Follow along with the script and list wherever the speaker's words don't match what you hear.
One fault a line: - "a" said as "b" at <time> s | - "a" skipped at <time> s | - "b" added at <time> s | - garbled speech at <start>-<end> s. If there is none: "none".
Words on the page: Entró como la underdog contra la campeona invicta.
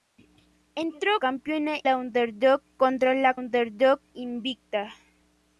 - "como" said as "campeona" at 1.2 s
- "campeona" said as "underdog" at 3.3 s